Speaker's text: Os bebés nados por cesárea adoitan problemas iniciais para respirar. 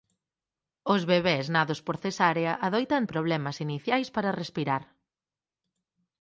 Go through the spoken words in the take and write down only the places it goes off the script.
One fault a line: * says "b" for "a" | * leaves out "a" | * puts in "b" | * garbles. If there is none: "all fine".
all fine